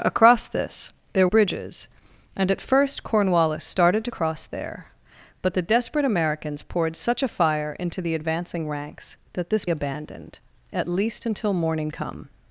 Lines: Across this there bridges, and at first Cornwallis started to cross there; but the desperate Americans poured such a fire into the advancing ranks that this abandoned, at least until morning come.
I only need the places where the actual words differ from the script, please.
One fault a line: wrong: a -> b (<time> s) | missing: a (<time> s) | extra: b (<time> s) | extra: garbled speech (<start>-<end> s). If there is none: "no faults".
no faults